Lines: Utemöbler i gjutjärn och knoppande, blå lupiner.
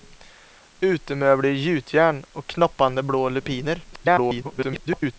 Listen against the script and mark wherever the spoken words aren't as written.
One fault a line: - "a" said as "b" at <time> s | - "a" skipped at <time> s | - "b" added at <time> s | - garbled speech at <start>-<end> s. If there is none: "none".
- garbled speech at 3.9-5.1 s